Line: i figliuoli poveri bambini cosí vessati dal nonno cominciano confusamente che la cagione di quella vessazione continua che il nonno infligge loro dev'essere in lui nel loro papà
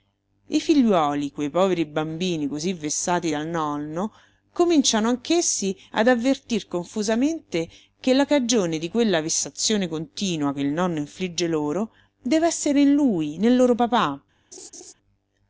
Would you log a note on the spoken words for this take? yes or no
yes